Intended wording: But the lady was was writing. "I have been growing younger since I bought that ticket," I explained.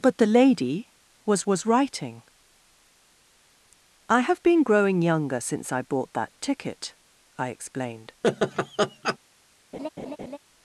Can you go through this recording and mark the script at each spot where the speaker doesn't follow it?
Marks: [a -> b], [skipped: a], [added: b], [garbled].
But the lady was was writing. "I have been growing younger since I bought that ticket," I explained.